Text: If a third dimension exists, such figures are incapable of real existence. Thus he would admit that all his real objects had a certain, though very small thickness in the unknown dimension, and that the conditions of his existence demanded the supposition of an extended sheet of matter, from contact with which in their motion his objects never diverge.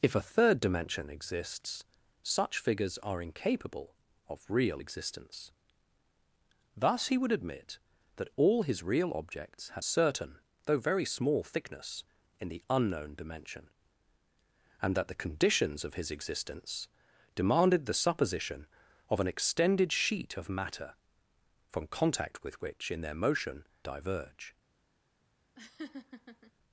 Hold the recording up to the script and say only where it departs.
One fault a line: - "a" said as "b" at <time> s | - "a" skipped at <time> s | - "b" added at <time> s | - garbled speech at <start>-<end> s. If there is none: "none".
- "a" skipped at 9.8 s
- "his objects never" skipped at 23.6 s